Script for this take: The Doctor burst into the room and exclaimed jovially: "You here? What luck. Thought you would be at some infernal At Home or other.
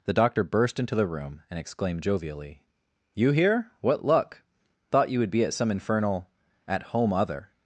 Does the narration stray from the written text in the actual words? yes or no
yes